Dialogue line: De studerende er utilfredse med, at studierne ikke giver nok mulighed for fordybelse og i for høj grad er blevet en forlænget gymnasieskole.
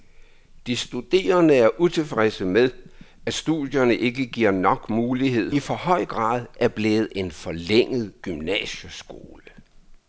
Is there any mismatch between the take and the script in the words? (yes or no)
yes